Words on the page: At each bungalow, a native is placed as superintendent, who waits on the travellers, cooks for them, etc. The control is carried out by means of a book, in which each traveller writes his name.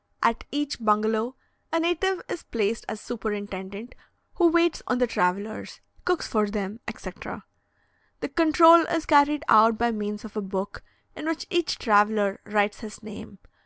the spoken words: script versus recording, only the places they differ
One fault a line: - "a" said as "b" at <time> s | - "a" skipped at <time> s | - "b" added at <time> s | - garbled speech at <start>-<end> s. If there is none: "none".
none